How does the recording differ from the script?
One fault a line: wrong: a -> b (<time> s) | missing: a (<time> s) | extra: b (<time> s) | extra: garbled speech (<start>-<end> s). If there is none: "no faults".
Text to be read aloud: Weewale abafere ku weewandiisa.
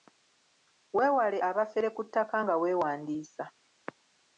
extra: ttaka nga (2.1 s)